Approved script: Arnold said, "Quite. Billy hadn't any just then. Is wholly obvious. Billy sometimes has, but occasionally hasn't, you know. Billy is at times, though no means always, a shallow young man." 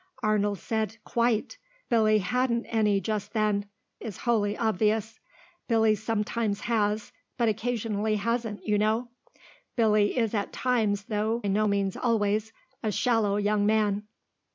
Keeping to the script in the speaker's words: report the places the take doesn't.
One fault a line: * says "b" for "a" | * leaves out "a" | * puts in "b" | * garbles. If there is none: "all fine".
all fine